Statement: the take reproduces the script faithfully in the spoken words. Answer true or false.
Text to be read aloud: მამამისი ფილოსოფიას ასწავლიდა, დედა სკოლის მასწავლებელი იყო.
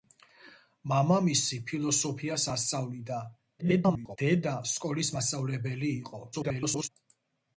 false